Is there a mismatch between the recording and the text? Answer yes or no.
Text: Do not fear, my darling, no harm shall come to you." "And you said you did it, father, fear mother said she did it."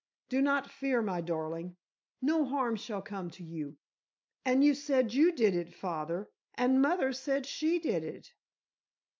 yes